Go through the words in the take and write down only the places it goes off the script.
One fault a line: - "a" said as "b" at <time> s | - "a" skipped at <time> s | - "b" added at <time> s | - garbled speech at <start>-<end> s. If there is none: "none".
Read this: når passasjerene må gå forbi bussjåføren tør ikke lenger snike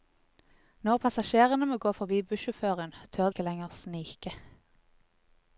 none